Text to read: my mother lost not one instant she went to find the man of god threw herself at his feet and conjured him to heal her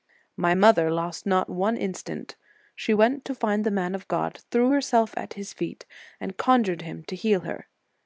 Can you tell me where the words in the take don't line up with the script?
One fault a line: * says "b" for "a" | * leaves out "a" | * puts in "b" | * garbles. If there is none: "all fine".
all fine